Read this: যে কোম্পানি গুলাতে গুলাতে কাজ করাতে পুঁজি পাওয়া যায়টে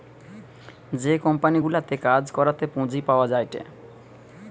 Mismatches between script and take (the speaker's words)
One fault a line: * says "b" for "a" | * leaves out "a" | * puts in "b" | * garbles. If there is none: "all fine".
* leaves out "গুলাতে"